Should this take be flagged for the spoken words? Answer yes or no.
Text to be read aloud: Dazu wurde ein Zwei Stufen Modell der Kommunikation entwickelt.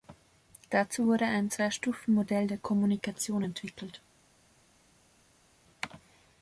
no